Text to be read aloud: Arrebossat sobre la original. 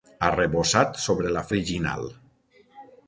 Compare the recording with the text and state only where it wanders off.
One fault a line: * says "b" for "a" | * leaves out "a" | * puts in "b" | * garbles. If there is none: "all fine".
all fine